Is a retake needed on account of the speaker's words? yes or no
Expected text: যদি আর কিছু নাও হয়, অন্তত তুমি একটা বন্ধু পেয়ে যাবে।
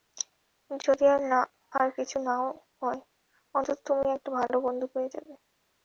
yes